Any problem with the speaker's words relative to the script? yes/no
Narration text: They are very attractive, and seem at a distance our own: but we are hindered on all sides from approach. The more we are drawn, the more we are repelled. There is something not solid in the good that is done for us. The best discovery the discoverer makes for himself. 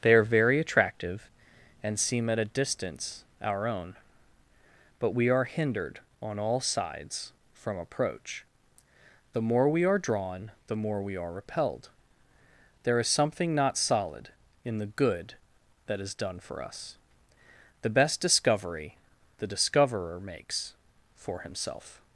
no